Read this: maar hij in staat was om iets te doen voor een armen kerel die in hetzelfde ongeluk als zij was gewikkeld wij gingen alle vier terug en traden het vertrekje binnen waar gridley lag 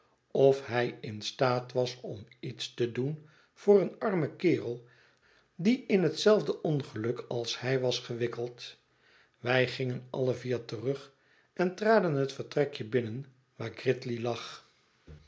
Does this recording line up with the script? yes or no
no